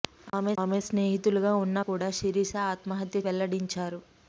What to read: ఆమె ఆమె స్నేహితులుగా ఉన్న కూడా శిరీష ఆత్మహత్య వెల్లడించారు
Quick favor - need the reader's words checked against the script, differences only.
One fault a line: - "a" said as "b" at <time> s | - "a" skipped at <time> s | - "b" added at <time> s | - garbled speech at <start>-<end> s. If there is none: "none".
none